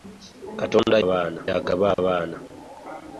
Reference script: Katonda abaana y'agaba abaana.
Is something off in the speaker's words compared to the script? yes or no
no